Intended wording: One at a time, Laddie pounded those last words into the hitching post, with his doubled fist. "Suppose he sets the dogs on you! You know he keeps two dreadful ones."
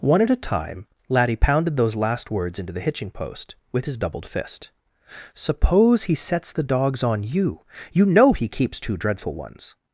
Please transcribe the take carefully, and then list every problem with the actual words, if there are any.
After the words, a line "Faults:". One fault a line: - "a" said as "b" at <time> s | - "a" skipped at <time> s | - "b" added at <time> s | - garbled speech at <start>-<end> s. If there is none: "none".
One at a time, Laddie pounded those last words into the hitching post, with his doubled fist. "Suppose he sets the dogs on you! You know he keeps two dreadful ones."
Faults:
none